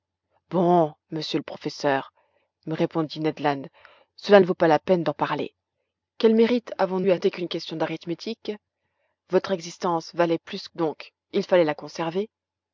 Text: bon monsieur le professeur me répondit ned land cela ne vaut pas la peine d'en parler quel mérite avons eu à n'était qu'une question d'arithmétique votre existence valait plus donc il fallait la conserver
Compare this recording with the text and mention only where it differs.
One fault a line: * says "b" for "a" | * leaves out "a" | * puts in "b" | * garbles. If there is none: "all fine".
all fine